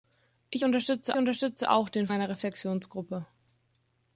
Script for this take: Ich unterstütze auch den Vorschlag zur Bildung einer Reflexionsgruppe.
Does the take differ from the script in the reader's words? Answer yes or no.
yes